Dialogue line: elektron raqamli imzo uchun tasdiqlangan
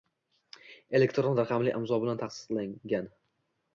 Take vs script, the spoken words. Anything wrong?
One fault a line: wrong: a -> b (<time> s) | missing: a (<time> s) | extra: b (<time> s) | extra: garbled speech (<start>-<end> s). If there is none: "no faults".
wrong: uchun -> bilan (2.0 s)